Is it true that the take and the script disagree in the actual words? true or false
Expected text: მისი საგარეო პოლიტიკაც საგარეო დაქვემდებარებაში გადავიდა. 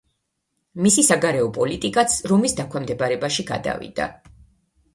true